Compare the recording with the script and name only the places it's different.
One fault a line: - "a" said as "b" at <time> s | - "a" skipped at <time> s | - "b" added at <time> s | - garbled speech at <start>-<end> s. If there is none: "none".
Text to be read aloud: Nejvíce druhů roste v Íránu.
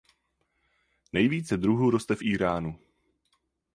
none